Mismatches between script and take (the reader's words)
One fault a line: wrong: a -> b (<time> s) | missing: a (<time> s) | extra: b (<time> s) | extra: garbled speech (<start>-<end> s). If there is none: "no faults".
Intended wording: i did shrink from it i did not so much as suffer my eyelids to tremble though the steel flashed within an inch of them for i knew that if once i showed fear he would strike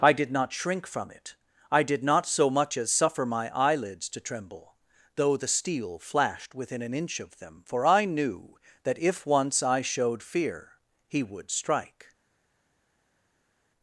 extra: not (0.3 s)